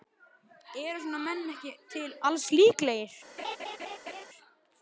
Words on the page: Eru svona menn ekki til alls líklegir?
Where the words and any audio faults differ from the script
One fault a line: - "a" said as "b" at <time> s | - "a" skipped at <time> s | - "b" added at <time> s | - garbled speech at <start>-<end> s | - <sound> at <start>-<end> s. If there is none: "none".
- laugh at 3.4-4.3 s